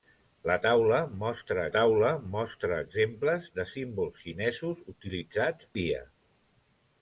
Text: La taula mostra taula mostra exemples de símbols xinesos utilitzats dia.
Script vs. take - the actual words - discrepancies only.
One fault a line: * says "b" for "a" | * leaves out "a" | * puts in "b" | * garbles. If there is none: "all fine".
all fine